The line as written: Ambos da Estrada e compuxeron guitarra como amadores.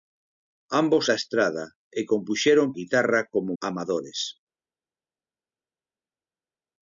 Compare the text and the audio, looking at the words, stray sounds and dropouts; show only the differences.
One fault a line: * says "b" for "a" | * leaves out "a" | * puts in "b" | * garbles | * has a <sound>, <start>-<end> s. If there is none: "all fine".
all fine